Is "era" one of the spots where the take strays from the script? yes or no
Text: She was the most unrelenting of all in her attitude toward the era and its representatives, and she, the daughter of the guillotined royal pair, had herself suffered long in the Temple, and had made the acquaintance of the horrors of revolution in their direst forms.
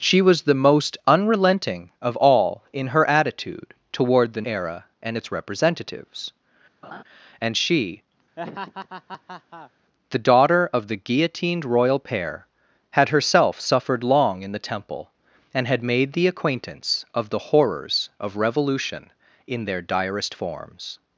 no